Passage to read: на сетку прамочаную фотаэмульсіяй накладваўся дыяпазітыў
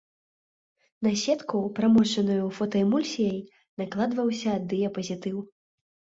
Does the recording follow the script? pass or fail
pass